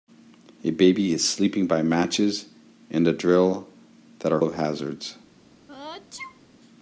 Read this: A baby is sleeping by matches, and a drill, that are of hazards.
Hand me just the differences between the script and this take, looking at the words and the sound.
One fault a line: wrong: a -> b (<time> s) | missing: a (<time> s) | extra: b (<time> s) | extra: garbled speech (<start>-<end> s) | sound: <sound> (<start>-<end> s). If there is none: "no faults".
sound: sneeze (5.7-6.4 s)